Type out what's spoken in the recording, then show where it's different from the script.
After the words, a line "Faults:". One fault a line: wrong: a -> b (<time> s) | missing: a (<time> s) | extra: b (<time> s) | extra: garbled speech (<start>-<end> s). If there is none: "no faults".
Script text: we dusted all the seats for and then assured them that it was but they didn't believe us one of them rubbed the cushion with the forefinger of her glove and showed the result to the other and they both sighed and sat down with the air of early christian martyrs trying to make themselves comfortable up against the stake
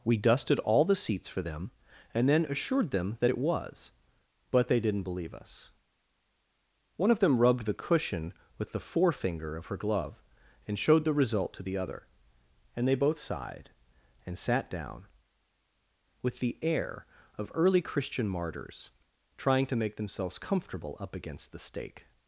we dusted all the seats for them and then assured them that it was but they didn't believe us one of them rubbed the cushion with the forefinger of her glove and showed the result to the other and they both sighed and sat down with the air of early christian martyrs trying to make themselves comfortable up against the stake
Faults:
extra: them (1.4 s)